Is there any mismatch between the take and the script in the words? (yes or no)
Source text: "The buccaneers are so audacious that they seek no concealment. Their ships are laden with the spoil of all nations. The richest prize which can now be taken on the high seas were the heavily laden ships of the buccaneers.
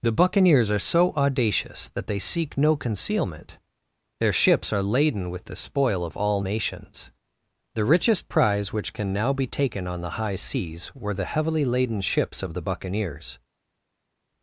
no